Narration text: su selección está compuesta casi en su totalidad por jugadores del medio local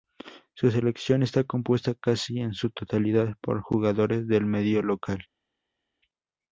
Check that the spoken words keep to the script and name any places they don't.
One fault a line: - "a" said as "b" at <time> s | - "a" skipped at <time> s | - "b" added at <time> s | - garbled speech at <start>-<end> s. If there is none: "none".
none